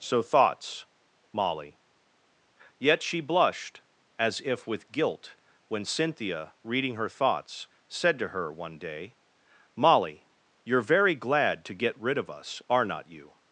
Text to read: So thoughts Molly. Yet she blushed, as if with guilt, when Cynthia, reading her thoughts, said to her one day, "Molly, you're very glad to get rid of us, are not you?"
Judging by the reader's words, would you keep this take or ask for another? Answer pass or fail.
pass